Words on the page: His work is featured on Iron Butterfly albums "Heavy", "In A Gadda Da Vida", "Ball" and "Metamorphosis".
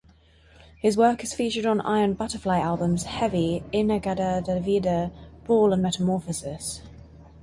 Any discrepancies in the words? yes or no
no